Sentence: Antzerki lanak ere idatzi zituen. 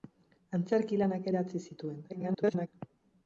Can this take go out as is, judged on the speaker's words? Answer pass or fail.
fail